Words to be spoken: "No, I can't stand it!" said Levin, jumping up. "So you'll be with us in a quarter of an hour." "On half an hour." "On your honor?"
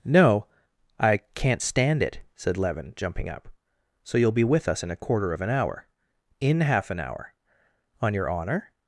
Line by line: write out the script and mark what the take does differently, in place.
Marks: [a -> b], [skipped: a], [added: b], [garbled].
"No, I can't stand it!" said Levin, jumping up. "So you'll be with us in a quarter of an hour." ["On -> In] half an hour." "On your honor?"